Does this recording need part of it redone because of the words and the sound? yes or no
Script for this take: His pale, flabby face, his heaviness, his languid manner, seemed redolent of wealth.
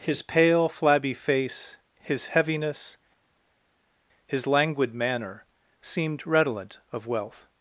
no